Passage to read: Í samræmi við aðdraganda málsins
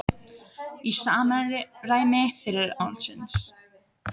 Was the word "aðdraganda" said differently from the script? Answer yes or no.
yes